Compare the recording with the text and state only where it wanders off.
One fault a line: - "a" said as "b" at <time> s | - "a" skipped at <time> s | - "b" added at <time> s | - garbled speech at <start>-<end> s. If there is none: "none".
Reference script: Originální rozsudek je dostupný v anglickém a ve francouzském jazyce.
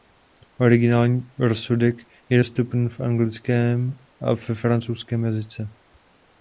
none